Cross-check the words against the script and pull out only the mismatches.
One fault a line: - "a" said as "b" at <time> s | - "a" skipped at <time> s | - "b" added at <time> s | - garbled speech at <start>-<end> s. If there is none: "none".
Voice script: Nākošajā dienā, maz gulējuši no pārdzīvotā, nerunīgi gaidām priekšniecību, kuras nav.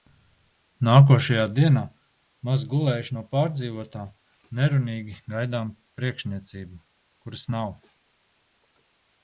none